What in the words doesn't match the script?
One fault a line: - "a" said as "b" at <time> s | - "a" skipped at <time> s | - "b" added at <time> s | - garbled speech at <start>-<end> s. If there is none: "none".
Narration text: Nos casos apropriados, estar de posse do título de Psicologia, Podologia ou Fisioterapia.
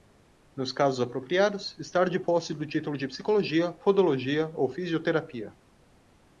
none